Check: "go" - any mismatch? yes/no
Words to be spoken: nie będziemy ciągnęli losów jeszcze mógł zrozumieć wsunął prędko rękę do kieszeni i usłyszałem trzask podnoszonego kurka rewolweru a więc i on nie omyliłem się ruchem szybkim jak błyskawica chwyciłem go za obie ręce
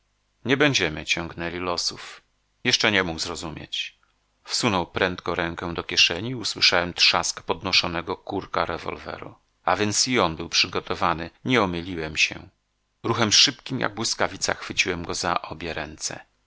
no